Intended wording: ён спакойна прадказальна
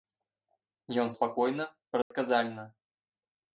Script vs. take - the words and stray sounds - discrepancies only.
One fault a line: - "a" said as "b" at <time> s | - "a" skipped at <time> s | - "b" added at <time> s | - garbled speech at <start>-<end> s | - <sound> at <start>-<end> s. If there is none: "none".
- dropout at 2.0-2.1 s